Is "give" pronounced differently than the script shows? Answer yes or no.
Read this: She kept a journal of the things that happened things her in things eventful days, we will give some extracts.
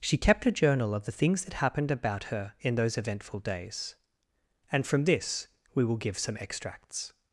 no